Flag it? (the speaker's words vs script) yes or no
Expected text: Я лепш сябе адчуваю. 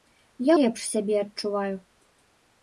no